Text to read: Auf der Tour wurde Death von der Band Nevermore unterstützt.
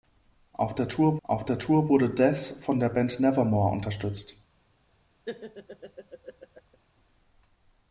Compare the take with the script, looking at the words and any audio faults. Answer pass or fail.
fail